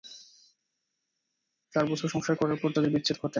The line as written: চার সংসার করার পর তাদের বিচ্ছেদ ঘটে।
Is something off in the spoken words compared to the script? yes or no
yes